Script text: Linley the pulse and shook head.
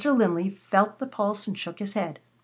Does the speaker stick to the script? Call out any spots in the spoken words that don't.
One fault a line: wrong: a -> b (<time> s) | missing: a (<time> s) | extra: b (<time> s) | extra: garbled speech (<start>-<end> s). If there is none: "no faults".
extra: felt (0.7 s)
extra: his (1.8 s)